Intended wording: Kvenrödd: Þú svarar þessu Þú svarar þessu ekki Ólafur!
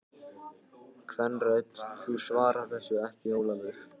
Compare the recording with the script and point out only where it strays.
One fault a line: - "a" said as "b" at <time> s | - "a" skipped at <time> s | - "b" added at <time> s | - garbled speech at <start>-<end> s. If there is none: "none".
- "Þú svarar þessu" skipped at 3.0 s